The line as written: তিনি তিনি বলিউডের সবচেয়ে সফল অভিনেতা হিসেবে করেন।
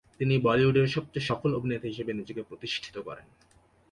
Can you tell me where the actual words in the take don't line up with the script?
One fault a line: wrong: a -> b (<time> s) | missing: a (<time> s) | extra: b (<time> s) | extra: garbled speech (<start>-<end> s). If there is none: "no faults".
missing: তিনি (0.3 s)
extra: নিজেকে প্রতিষ্ঠিত (2.1 s)